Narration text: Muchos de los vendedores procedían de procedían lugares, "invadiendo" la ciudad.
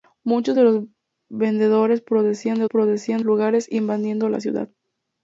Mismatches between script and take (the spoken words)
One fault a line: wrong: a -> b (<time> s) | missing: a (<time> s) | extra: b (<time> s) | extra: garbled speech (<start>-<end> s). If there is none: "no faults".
no faults